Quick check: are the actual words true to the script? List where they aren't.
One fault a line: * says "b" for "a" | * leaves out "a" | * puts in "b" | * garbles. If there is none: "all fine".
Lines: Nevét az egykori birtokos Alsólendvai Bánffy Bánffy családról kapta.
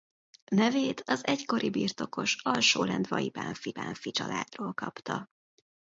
all fine